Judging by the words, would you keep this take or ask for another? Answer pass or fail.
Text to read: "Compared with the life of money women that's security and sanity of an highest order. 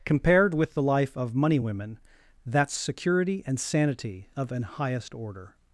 pass